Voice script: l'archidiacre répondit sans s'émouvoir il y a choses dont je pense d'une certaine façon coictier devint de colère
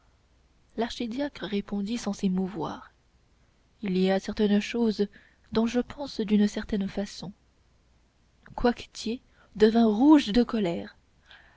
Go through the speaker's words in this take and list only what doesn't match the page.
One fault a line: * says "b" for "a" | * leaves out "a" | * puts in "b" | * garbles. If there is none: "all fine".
* puts in "certaines"
* puts in "rouge"